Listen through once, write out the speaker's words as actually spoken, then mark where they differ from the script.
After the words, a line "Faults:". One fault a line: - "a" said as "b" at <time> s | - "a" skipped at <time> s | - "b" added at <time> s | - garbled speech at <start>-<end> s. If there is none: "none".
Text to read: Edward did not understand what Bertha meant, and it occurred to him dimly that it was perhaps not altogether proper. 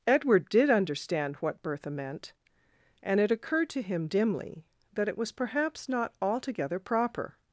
Edward did understand what Bertha meant, and it occurred to him dimly that it was perhaps not altogether proper.
Faults:
- "not" skipped at 0.7 s